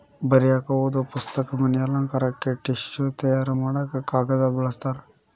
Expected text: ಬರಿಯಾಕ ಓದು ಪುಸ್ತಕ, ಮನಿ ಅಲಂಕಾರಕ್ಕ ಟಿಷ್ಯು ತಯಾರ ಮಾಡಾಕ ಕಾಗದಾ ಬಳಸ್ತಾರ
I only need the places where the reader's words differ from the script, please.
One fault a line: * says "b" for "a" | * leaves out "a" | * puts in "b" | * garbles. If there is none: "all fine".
all fine